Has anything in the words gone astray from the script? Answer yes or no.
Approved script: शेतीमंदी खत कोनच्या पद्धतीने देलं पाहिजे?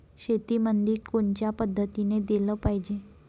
yes